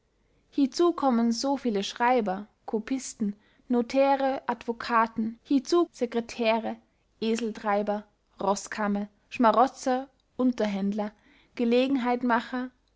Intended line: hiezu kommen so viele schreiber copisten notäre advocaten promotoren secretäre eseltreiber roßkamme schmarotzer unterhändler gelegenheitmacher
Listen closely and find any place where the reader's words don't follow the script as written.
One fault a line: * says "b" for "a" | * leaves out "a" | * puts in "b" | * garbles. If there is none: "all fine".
* says "hiezu" for "promotoren"